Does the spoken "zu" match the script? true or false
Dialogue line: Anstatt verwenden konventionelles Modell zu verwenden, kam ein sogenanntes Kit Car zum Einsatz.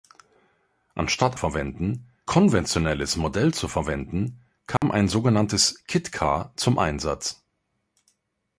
true